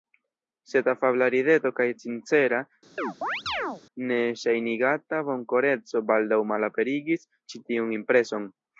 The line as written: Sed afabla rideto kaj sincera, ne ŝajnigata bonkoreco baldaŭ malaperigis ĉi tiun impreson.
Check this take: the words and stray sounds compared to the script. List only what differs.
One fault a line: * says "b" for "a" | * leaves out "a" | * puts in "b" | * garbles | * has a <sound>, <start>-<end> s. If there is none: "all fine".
* has a chirp, 3.0-3.8 s